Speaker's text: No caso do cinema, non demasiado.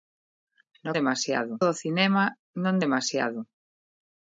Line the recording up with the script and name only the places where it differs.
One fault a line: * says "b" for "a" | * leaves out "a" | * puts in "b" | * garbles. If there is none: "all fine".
* says "demasiado" for "caso"